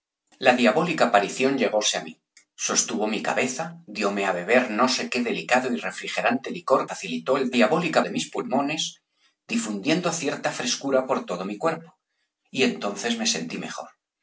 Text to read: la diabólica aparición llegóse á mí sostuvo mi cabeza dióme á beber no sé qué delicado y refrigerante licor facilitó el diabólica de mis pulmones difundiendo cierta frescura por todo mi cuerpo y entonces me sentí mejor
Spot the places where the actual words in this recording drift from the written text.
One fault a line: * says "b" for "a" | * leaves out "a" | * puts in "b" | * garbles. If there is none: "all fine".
all fine